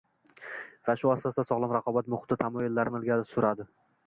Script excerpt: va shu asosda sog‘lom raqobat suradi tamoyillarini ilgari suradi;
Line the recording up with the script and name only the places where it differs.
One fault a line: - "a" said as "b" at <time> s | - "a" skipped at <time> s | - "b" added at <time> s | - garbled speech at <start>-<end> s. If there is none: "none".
- "suradi" said as "muhiti" at 2.1 s